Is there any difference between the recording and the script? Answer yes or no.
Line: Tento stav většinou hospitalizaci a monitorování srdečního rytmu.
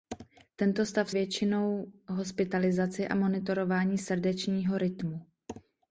no